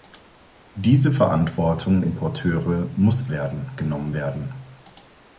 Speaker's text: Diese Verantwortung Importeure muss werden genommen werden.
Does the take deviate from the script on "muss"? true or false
false